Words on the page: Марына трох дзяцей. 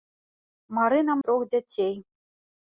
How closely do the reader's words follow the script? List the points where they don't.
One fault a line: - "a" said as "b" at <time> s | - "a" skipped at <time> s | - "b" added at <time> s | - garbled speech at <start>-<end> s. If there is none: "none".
none